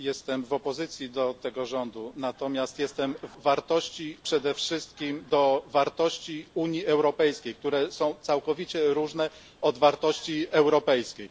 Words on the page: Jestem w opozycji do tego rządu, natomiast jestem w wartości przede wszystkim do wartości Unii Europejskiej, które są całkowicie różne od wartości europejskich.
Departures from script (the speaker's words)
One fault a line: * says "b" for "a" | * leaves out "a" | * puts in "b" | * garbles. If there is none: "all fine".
all fine